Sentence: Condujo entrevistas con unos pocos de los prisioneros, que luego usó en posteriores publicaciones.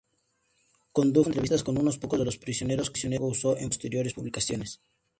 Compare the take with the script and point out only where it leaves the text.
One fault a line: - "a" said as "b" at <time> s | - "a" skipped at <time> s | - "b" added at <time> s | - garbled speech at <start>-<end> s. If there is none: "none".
none